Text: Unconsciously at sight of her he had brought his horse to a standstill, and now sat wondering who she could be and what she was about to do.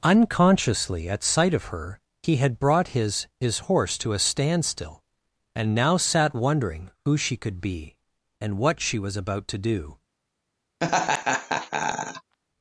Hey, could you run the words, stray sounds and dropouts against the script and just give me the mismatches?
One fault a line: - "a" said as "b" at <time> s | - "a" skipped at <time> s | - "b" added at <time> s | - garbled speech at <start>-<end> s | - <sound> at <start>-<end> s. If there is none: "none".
- "his" added at 3.4 s
- laugh at 10.8-12.4 s